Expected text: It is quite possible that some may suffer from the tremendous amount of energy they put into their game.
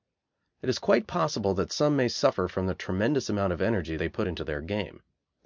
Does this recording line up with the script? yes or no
yes